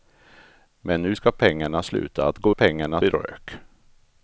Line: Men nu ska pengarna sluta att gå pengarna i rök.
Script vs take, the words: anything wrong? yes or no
no